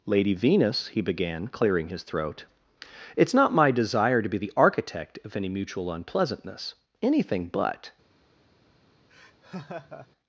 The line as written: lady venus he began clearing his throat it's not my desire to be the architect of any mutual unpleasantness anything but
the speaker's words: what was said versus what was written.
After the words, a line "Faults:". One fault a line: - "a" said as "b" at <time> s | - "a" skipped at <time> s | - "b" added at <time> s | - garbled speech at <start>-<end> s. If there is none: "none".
lady venus he began clearing his throat it's not my desire to be the architect of any mutual unpleasantness anything but
Faults:
none